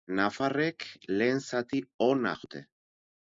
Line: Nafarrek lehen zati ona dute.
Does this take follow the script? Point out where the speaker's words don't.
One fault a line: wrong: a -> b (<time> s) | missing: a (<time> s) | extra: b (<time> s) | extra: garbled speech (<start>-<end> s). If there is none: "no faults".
no faults